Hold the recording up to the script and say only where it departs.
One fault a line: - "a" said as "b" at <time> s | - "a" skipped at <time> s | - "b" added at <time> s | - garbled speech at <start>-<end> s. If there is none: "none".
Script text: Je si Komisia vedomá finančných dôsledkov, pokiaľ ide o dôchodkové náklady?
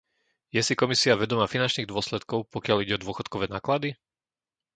none